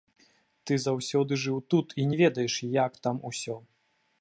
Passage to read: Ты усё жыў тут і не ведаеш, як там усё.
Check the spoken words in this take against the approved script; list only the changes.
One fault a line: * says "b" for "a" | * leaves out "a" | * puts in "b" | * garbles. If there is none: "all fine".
* says "заўсёды" for "усё"